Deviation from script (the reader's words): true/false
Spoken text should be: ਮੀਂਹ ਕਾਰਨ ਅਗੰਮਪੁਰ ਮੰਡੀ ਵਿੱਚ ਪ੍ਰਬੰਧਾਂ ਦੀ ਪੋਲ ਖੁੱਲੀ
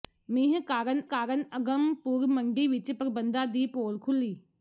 true